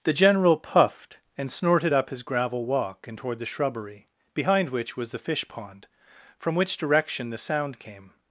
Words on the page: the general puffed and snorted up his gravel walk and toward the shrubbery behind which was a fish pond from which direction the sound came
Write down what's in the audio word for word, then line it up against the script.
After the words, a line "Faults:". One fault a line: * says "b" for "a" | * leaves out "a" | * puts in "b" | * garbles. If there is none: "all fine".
the general puffed and snorted up his gravel walk and toward the shrubbery behind which was the fish pond from which direction the sound came
Faults:
* says "the" for "a"